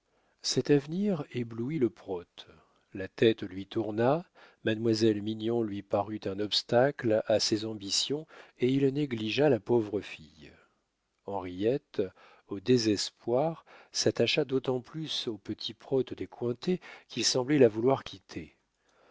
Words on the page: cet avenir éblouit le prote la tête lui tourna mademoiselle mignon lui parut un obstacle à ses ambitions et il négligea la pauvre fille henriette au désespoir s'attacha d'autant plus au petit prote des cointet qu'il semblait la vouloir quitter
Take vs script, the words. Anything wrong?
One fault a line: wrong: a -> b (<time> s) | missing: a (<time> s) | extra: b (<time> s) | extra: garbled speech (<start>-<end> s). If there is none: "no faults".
no faults